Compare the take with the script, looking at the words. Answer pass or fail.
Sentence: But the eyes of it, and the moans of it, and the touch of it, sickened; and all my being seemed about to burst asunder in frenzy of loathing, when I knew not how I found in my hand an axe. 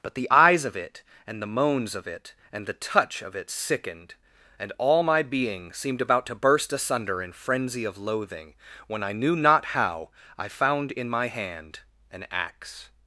pass